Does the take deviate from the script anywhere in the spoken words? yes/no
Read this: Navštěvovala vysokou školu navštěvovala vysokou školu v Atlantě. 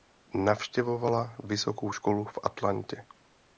yes